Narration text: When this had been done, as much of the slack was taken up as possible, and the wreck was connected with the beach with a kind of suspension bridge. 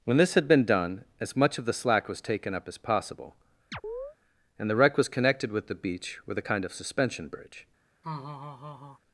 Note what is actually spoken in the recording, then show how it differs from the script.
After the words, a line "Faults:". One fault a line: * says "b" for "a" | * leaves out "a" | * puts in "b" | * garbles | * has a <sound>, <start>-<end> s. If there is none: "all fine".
When this had been done, as much of the slack was taken up as possible, and the wreck was connected with the beach with a kind of suspension bridge.
Faults:
* has a chirp, 3.7-4.2 s
* has a laugh, 8.0-9.0 s